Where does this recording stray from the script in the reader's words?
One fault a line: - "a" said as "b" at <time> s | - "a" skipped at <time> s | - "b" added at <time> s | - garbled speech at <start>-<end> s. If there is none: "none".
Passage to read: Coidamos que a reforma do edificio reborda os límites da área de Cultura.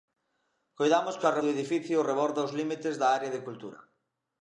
- "reforma" skipped at 1.4 s